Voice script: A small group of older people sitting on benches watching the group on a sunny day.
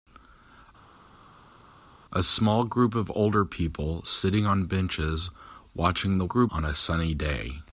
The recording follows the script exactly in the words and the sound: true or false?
true